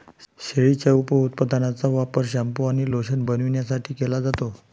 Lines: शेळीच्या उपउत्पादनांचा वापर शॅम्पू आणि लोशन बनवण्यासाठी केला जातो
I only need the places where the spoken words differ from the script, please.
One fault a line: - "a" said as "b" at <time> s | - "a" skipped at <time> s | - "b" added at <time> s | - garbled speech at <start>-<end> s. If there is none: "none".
none